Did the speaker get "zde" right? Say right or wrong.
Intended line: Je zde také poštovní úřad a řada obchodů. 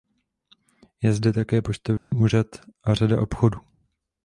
right